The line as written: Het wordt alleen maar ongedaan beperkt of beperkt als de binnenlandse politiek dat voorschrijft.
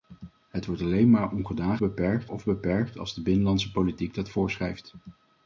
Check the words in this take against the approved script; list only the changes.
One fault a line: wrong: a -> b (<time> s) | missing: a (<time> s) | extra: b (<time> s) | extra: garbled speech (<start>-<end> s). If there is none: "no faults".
no faults